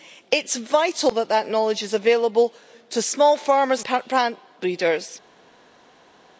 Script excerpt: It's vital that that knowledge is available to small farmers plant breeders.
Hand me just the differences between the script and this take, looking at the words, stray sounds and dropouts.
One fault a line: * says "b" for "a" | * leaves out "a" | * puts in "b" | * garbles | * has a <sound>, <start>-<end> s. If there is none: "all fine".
all fine